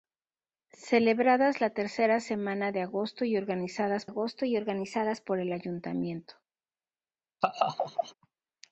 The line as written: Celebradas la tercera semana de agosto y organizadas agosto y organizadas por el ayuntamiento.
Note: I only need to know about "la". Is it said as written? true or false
true